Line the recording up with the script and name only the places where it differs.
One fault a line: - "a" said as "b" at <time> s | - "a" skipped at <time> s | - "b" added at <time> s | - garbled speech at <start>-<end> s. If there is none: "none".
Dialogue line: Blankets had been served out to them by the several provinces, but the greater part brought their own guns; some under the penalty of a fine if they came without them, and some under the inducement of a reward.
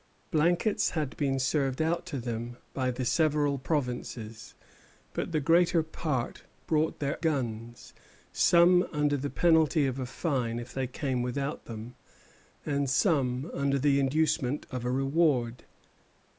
- "own" skipped at 7.2 s